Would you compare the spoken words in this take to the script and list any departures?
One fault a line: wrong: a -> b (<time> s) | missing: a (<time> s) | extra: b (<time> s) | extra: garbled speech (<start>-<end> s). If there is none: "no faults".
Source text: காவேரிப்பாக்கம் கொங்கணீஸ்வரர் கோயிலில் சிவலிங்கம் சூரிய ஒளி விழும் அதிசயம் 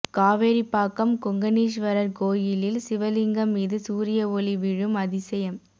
extra: மீது (3.5 s)